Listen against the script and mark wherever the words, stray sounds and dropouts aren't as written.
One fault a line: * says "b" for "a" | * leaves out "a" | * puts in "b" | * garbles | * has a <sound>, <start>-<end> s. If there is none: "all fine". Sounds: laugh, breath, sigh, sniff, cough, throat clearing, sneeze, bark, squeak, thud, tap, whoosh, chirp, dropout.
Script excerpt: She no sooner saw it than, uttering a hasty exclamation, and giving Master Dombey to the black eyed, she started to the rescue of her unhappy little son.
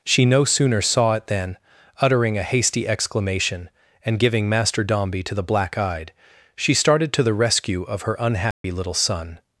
* has a dropout, 8.5-8.6 s